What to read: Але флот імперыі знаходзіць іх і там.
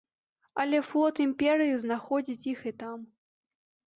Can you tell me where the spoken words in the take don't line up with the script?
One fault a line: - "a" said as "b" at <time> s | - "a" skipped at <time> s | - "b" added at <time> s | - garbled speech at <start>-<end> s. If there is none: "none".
none